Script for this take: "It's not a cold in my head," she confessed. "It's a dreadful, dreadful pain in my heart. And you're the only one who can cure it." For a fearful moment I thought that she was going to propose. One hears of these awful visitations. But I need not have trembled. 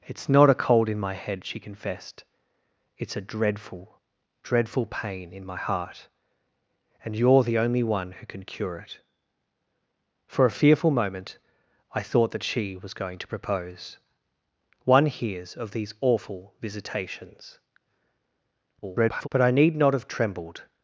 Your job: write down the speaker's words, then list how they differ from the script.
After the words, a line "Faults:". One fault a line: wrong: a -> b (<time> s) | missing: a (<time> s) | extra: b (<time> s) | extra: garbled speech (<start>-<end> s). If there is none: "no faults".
"It's not a cold in my head," she confessed. "It's a dreadful, dreadful pain in my heart. And you're the only one who can cure it." For a fearful moment I thought that she was going to propose. One hears of these awful visitations. [garbled] But I need not have trembled.
Faults:
extra: garbled speech (18.8-19.3 s)